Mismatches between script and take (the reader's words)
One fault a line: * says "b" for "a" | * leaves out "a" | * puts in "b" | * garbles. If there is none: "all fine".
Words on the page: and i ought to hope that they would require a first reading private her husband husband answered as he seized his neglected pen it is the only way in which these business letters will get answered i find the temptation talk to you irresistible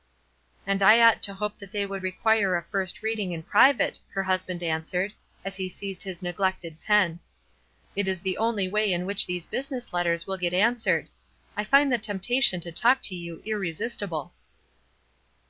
* puts in "in"
* leaves out "husband"
* puts in "to"